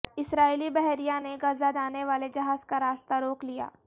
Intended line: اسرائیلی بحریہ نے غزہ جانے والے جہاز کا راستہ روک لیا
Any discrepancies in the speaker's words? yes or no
no